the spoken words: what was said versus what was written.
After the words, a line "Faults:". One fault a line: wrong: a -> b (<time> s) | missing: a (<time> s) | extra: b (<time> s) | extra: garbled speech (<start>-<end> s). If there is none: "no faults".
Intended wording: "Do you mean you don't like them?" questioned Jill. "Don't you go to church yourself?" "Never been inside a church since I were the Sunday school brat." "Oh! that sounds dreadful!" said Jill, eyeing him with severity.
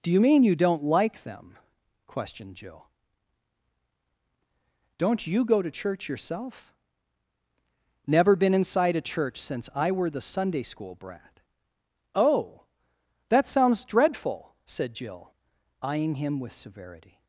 "Do you mean you don't like them?" questioned Jill. "Don't you go to church yourself?" "Never been inside a church since I were the Sunday school brat." "Oh! that sounds dreadful!" said Jill, eyeing him with severity.
Faults:
no faults